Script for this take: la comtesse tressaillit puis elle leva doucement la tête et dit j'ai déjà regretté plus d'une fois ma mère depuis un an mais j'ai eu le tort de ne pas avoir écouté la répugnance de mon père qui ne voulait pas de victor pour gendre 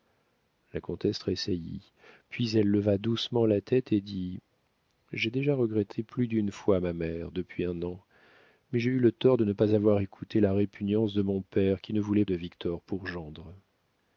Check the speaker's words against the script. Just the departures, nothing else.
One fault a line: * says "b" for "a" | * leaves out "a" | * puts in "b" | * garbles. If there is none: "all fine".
* leaves out "pas"